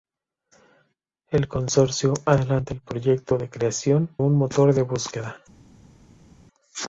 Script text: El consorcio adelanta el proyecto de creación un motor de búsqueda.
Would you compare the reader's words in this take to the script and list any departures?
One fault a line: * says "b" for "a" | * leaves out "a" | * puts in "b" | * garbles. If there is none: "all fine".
all fine